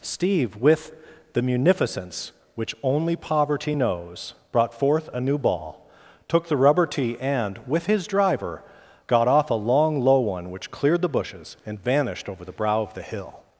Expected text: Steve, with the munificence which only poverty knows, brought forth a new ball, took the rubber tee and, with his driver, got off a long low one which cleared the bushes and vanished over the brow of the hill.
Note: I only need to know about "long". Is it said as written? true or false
true